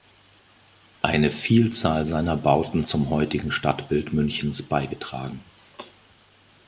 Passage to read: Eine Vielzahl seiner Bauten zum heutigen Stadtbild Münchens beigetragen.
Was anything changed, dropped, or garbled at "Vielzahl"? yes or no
no